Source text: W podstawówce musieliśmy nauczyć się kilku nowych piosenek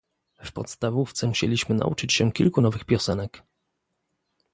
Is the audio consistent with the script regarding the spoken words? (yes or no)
yes